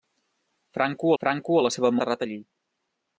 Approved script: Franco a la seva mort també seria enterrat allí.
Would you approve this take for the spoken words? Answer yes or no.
no